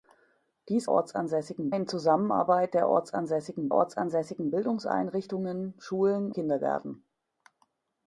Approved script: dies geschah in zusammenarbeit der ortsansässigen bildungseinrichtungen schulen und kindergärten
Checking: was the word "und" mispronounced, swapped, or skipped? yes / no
yes